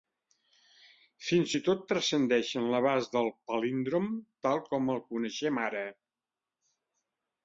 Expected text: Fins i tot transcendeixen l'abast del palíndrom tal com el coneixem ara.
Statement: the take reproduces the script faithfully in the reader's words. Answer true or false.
true